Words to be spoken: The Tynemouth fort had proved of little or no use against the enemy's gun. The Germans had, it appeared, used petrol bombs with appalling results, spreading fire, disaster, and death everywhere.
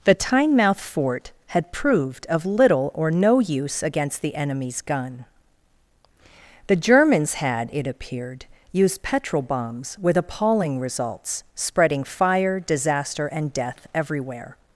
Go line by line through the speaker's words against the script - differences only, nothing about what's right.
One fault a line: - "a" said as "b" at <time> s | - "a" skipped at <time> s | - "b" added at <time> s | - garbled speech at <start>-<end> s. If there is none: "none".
none